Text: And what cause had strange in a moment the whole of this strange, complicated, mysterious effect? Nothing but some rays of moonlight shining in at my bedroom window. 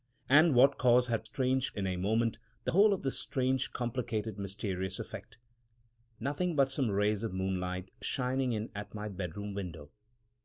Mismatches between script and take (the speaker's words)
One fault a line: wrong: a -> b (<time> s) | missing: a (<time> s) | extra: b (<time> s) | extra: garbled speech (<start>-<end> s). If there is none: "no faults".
no faults